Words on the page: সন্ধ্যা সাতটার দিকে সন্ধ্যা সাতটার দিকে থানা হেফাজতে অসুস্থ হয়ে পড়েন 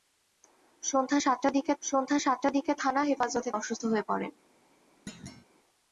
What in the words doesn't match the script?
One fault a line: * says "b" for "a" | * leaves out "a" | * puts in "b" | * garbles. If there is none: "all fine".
all fine